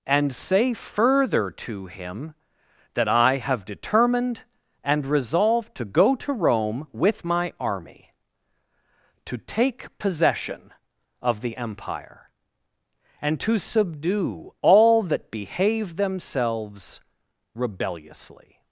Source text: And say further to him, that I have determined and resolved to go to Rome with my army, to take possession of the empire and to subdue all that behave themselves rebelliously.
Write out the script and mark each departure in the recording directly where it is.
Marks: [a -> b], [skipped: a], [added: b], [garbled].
And say further to him, that I have determined and resolved to go to Rome with my army, to take possession of the empire and to subdue all that behave themselves rebelliously.